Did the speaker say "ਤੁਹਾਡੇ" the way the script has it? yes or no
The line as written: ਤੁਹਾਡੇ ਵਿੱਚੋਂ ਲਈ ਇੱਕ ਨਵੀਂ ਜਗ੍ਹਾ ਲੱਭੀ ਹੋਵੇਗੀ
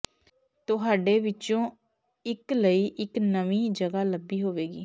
yes